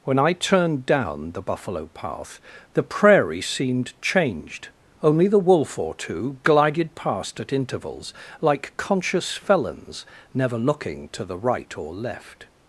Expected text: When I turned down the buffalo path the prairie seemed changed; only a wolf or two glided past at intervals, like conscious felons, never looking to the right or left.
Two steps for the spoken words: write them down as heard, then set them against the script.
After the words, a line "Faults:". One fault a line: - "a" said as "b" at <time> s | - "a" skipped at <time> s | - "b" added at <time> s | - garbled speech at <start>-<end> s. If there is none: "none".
When I turned down the buffalo path the prairie seemed changed; only the wolf or two glided past at intervals, like conscious felons, never looking to the right or left.
Faults:
- "a" said as "the" at 5.3 s